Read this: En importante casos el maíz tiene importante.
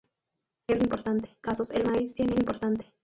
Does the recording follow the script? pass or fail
pass